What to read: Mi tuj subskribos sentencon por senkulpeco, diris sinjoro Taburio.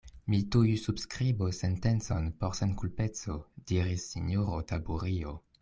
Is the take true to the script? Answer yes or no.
yes